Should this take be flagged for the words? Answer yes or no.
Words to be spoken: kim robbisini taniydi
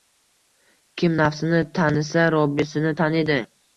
yes